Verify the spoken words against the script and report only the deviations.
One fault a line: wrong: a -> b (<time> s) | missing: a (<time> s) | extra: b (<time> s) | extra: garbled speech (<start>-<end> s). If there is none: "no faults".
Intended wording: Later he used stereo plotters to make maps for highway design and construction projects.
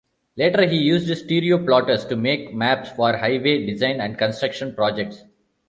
no faults